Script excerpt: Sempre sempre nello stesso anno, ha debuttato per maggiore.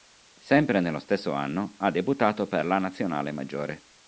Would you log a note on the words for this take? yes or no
yes